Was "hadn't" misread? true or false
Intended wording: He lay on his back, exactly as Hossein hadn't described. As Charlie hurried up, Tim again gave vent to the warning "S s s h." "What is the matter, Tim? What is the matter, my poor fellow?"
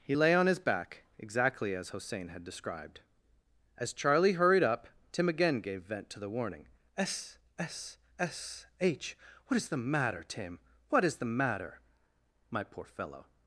true